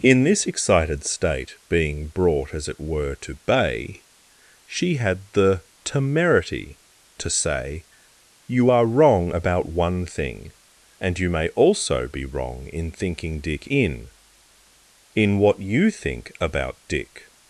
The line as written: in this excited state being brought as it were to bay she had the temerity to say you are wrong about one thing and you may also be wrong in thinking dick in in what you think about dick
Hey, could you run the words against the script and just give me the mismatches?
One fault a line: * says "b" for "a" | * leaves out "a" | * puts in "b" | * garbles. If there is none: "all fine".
all fine